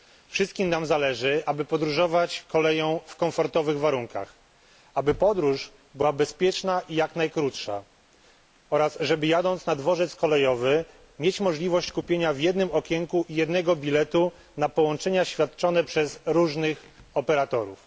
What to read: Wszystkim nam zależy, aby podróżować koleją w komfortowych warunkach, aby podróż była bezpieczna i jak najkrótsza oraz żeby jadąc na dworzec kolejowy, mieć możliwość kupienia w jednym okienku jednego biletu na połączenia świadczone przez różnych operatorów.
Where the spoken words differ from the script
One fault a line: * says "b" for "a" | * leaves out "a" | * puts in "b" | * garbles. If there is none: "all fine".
all fine